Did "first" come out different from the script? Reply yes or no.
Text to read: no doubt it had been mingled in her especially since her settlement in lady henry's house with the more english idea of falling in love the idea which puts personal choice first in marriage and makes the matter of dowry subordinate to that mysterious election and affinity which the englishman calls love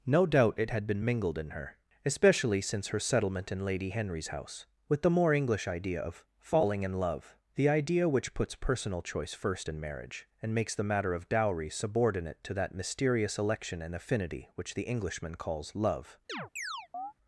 no